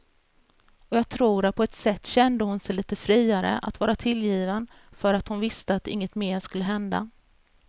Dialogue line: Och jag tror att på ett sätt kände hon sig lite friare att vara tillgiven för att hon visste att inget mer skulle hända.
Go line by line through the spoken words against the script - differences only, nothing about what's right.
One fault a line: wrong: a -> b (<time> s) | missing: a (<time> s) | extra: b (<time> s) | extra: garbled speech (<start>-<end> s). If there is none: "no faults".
no faults